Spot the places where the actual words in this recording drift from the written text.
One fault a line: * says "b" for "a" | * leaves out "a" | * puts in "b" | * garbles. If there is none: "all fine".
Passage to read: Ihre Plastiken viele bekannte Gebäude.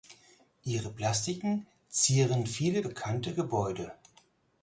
* puts in "zieren"